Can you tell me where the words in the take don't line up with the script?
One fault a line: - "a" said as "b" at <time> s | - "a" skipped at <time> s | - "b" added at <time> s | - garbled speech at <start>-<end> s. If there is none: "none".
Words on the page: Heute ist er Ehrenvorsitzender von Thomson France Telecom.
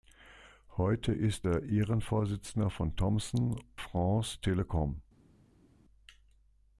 none